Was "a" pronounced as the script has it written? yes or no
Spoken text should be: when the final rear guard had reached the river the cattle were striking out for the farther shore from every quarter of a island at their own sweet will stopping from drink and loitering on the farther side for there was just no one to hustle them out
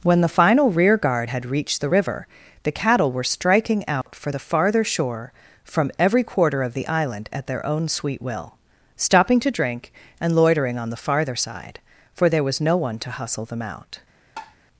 no